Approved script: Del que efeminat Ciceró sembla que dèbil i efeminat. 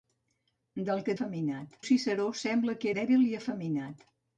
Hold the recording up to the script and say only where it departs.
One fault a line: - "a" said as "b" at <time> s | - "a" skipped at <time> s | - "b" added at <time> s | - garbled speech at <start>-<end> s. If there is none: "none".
none